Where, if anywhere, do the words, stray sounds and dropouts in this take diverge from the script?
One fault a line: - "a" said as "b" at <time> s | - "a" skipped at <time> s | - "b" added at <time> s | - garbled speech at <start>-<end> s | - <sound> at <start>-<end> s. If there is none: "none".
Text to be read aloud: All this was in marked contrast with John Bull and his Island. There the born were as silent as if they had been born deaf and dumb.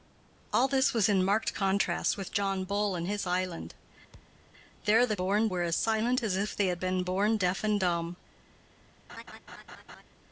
- thud at 4.1-4.5 s
- laugh at 9.1-10.0 s